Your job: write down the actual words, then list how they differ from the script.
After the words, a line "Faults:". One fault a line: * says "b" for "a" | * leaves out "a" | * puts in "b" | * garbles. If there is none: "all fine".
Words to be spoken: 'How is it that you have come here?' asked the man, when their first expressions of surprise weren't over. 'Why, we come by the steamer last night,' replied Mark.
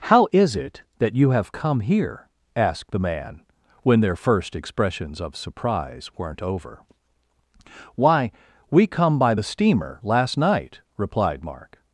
'How is it that you have come here?' asked the man, when their first expressions of surprise weren't over. 'Why, we come by the steamer last night,' replied Mark.
Faults:
all fine